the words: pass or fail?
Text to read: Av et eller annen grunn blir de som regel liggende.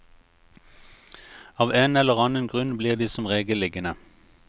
fail